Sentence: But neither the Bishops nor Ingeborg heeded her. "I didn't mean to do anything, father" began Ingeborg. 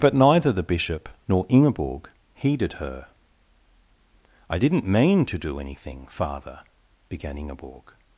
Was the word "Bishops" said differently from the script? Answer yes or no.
yes